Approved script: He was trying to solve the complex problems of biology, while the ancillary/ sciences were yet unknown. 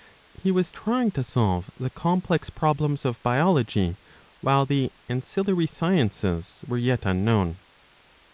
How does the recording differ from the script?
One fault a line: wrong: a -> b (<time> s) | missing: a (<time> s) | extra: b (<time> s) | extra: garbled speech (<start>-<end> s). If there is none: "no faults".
no faults